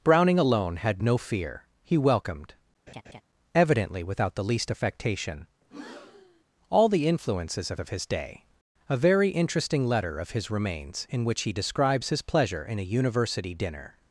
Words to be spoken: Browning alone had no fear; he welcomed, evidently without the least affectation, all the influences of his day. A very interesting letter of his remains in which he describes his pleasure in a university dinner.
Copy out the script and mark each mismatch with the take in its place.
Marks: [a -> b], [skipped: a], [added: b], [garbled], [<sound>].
Browning alone had no fear; he welcomed, [laugh] evidently without the least affectation, [breath] all the influences of [added: of] his day. A very interesting letter of his remains in which he describes his pleasure in a university dinner.